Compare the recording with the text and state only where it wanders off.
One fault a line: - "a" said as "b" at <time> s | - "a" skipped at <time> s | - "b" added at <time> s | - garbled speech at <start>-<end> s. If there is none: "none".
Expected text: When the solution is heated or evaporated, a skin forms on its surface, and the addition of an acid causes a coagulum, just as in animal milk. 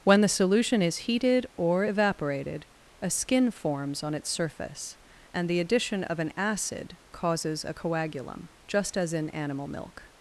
none